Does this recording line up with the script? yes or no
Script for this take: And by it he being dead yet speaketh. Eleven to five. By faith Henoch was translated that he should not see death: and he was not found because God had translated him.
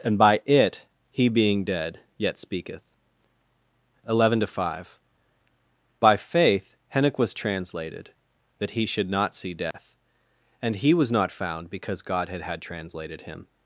no